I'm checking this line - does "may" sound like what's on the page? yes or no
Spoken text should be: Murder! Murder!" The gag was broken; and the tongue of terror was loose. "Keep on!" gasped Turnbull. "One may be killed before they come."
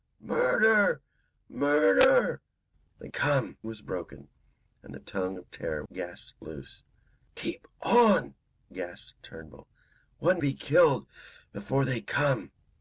no